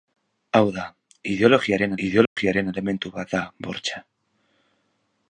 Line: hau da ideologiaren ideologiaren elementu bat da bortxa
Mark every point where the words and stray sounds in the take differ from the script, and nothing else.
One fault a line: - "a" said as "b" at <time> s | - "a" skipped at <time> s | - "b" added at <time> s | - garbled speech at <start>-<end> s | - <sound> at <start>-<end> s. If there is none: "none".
- dropout at 2.3-2.4 s